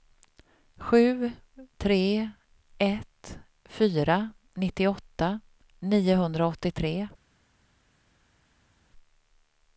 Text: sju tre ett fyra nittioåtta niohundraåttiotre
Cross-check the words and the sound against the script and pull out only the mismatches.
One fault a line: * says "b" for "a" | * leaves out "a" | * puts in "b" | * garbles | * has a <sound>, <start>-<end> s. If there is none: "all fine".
all fine